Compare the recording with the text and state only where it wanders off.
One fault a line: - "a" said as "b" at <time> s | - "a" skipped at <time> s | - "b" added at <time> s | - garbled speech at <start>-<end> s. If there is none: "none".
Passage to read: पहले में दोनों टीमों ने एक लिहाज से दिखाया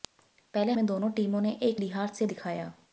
none